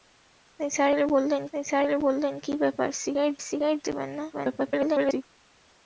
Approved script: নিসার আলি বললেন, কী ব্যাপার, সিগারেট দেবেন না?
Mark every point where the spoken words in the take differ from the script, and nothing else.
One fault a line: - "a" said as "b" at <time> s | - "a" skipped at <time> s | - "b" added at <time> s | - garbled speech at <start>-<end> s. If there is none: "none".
- "নিসার আলি বললেন" added at 1.5 s
- "সিগারেট" added at 3.5 s
- garbled speech at 4.3-5.2 s